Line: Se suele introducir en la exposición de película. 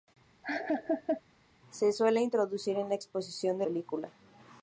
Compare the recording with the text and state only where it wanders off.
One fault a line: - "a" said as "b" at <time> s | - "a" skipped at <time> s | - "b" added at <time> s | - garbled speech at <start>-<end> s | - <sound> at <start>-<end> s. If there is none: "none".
- laugh at 0.4-1.2 s